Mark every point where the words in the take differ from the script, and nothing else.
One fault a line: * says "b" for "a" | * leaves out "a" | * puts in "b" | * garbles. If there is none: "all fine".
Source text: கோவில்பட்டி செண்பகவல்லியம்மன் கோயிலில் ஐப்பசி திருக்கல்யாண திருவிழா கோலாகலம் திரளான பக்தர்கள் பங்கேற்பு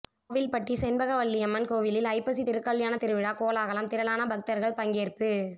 all fine